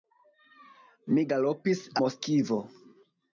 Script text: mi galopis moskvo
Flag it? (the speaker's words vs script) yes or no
no